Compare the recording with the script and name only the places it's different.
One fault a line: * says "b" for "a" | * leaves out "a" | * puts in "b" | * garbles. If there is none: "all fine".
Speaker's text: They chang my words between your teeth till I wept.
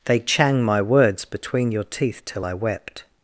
all fine